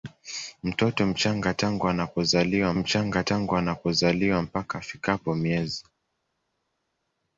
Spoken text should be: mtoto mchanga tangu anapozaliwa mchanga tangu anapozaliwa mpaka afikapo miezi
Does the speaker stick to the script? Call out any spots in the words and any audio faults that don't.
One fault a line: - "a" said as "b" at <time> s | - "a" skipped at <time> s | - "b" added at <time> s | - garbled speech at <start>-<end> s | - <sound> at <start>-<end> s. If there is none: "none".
none